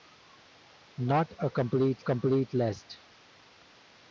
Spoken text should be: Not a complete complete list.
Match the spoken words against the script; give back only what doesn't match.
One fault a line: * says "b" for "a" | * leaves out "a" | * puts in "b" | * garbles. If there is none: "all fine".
all fine